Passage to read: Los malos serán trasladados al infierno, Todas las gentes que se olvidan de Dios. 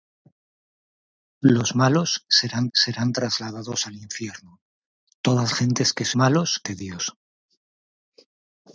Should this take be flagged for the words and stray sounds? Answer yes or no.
yes